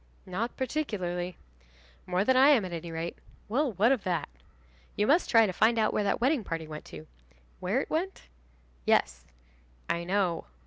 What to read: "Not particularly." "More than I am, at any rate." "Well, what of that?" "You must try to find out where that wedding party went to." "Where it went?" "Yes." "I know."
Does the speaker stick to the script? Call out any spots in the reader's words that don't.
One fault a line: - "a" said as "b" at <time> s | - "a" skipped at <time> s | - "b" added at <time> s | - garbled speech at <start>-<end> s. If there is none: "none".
none